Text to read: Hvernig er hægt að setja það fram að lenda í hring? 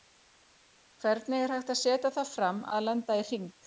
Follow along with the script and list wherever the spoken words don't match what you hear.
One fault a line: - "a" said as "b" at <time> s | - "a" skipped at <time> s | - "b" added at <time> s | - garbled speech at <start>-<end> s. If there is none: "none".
none